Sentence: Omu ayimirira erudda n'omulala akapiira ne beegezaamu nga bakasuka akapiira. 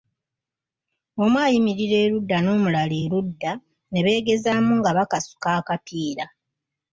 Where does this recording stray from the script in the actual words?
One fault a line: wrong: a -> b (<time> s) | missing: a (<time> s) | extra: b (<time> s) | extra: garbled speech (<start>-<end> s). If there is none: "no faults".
wrong: akapiira -> erudda (3.0 s)